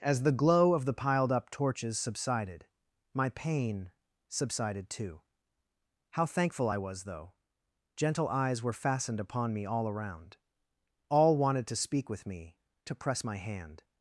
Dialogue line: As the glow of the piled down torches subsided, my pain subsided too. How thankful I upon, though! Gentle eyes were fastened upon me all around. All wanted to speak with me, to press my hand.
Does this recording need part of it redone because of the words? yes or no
yes